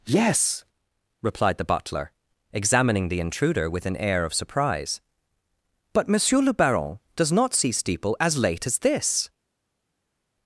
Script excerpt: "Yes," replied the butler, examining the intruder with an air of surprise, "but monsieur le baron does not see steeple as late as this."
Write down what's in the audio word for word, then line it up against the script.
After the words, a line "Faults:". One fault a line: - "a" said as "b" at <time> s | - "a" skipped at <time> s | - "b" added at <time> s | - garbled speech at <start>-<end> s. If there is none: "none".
"Yes," replied the butler, examining the intruder with an air of surprise, "but monsieur le baron does not see steeple as late as this."
Faults:
none